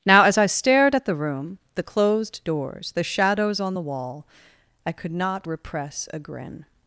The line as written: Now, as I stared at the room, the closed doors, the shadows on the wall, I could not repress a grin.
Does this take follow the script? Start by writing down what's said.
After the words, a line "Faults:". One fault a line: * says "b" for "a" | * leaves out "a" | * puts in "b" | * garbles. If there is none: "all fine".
Now, as I stared at the room, the closed doors, the shadows on the wall, I could not repress a grin.
Faults:
all fine